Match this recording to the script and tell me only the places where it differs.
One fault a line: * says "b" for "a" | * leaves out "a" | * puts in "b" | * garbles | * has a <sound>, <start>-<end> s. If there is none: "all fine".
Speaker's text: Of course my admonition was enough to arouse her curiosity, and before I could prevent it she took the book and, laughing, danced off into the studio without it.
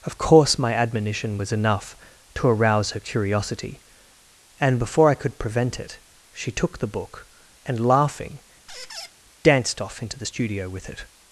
* has a squeak, 8.7-9.1 s
* says "with" for "without"